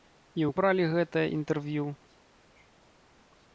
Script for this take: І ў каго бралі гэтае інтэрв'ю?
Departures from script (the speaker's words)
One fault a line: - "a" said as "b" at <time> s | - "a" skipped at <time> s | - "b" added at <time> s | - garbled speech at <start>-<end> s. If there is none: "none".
- "каго" skipped at 0.5 s